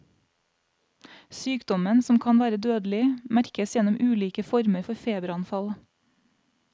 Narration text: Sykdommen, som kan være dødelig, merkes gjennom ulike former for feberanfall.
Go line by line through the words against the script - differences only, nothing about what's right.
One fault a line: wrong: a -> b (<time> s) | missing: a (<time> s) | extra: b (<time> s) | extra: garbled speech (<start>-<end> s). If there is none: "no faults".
no faults